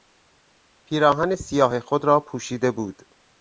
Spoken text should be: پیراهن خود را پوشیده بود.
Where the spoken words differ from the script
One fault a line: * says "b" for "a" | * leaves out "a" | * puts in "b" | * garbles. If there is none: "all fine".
* puts in "سیاه"